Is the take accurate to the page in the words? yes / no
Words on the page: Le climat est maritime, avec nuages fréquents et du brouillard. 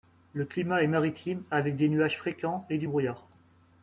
no